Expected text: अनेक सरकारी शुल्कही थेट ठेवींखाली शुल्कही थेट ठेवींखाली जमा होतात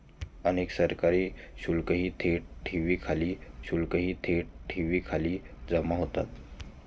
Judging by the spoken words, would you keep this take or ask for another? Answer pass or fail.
pass